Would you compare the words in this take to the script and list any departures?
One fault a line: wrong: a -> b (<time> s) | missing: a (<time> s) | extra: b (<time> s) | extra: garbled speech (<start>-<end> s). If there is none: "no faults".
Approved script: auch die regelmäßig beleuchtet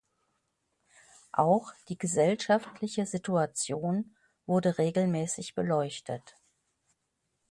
extra: gesellschaftliche situation wurde (2.0 s)